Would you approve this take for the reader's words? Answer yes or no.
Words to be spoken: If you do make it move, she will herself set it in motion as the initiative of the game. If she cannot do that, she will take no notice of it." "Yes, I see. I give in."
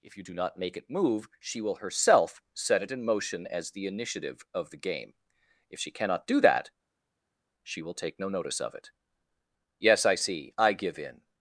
no